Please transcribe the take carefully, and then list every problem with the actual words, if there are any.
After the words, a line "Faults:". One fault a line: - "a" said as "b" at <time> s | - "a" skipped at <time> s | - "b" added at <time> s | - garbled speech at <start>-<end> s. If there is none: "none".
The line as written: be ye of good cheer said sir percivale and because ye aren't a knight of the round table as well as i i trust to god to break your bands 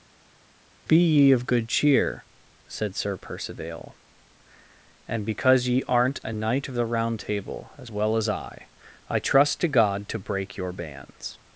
be ye of good cheer said sir percivale and because ye aren't a knight of the round table as well as i i trust to god to break your bands
Faults:
none